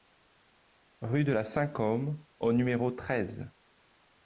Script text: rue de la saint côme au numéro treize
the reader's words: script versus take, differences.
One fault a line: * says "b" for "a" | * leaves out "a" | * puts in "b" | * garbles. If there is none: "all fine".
all fine